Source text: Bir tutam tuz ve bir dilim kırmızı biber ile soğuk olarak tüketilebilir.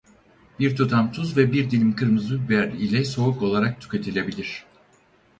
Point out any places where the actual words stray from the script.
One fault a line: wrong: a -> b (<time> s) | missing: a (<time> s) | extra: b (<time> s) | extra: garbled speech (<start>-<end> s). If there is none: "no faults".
no faults